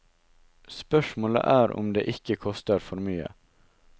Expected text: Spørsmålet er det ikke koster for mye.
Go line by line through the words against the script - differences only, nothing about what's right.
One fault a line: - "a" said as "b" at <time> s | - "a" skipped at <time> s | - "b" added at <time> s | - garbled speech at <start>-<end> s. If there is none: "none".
- "om" added at 1.8 s